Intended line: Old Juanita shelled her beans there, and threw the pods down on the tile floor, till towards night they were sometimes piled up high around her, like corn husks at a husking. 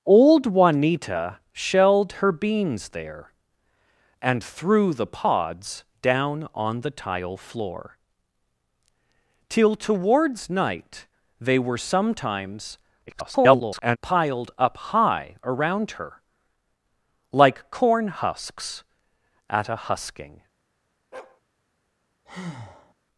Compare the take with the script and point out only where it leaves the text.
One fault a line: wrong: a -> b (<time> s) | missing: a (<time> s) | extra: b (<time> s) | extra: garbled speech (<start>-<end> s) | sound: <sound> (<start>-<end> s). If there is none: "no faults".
extra: garbled speech (13.1-14.0 s)
sound: bark (21.1-21.4 s)
sound: breath (22.3-22.9 s)